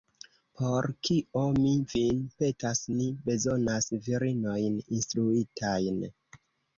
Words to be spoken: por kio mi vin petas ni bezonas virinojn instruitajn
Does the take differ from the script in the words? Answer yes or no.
no